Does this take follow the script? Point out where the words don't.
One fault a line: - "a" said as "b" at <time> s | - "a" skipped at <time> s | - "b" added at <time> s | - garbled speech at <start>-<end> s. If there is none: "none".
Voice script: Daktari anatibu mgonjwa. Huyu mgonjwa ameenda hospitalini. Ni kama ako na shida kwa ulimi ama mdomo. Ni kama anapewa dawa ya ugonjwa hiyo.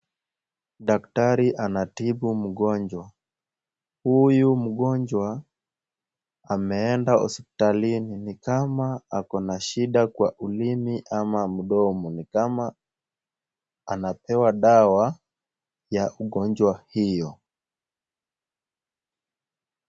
none